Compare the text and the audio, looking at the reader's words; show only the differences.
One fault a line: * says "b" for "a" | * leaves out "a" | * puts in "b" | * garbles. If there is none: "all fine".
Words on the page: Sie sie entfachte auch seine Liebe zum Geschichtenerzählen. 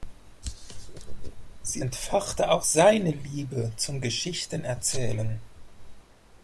* leaves out "sie"